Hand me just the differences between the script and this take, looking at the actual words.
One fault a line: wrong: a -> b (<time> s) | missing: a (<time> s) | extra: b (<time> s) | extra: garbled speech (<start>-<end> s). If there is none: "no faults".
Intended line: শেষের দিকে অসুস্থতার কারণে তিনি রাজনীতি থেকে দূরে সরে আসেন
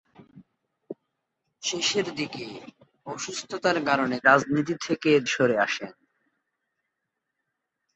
missing: তিনি (4.2 s)
missing: দূরে (5.1 s)